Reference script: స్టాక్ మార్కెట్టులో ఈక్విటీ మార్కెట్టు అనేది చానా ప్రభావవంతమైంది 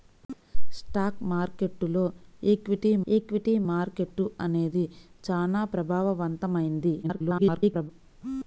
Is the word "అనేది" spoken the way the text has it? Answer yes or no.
yes